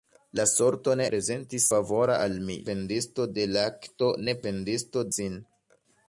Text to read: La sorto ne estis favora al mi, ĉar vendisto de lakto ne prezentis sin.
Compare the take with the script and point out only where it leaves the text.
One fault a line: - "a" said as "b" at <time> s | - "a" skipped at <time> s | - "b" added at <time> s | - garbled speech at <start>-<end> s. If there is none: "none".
- "estis" said as "prezentis" at 1.1 s
- "ĉar" skipped at 2.6 s
- "prezentis" said as "vendisto" at 4.5 s